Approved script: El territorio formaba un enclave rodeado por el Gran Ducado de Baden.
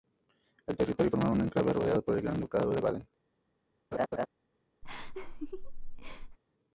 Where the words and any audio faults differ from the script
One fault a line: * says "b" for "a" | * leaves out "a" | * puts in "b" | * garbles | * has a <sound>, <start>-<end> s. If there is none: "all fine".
* has a laugh, 3.9-4.3 s
* has a laugh, 4.8-6.4 s